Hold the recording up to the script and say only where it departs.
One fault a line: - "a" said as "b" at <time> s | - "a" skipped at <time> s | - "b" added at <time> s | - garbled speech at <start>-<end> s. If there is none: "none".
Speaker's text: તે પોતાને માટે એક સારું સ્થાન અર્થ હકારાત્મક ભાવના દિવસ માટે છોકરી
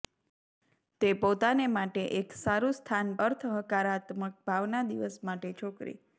none